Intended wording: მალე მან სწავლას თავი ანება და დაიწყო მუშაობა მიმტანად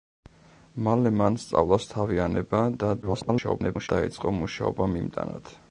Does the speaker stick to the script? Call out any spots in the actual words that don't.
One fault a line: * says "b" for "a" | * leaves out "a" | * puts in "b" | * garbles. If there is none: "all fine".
* garbles